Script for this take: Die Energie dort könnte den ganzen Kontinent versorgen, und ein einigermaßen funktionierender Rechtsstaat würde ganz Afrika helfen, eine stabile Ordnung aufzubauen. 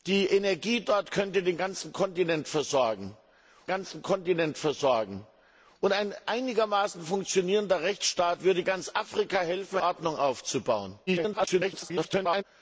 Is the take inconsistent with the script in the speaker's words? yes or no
yes